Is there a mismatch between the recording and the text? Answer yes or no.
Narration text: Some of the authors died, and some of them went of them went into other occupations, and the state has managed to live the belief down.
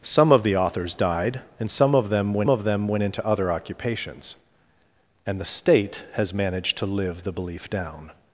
no